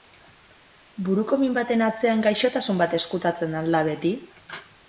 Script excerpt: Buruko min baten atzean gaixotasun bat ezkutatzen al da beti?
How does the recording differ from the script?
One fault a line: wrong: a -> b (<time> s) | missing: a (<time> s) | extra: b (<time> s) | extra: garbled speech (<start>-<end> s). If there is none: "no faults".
no faults